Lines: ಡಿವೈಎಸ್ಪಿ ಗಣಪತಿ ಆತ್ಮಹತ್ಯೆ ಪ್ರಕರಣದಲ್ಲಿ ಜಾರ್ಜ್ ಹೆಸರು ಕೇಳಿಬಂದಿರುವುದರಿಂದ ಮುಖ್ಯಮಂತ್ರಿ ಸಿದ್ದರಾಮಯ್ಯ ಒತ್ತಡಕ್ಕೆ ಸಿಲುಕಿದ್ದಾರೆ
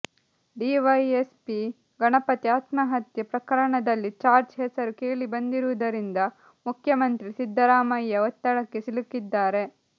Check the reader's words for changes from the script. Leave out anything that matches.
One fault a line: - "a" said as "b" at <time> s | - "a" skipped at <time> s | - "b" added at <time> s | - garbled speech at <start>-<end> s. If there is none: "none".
none